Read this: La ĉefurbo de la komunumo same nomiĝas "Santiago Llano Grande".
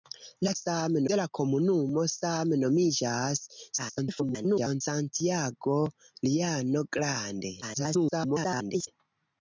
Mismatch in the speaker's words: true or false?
true